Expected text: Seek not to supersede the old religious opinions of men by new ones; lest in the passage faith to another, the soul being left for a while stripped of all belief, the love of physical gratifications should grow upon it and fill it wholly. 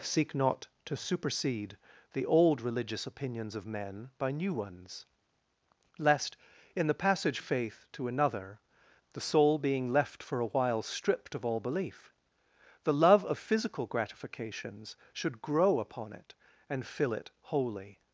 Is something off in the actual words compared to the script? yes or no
no